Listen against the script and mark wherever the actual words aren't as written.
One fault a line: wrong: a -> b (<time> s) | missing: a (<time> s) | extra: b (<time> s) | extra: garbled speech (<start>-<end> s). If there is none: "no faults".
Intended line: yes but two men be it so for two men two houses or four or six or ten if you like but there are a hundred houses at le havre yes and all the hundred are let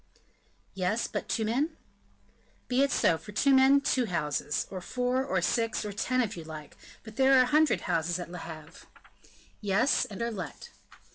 missing: all the hundred (10.2 s)